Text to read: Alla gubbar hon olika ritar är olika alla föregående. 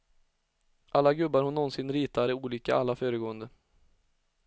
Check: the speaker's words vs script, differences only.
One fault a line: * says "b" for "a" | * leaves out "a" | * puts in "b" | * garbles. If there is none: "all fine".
* says "nånsin" for "olika"